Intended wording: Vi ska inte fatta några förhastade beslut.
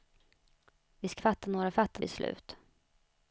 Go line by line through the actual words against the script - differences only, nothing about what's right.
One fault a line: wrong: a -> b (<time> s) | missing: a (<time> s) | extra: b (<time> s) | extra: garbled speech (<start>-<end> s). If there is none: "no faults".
missing: inte (1.2 s)
wrong: förhastade -> fatta (1.7 s)